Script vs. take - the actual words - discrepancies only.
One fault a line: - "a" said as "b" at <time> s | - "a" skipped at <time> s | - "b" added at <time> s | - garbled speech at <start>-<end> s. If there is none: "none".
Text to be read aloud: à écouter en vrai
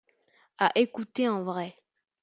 none